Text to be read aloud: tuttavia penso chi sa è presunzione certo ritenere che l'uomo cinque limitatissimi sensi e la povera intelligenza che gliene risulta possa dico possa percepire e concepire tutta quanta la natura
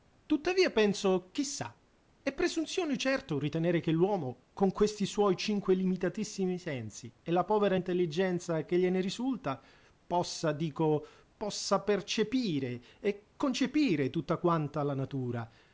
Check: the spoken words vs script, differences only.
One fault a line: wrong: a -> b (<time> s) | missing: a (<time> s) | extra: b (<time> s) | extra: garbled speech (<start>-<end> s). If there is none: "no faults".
extra: con questi suoi (4.5 s)